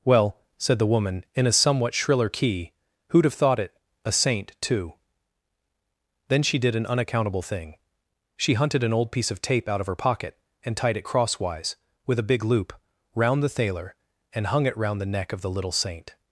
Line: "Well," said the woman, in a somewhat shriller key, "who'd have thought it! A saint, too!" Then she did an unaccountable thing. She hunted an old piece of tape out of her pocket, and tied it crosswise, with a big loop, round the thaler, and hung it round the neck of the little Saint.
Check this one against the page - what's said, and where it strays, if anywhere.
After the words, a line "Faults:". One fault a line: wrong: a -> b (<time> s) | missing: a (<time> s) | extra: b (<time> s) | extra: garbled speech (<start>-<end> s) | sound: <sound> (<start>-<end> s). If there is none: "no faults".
"Well," said the woman, in a somewhat shriller key, "who'd have thought it! A saint, too!" Then she did an unaccountable thing. She hunted an old piece of tape out of her pocket, and tied it crosswise, with a big loop, round the thaler, and hung it round the neck of the little Saint.
Faults:
no faults